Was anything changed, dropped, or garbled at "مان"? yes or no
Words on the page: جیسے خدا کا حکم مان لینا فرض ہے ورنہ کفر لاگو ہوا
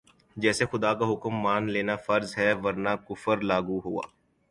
no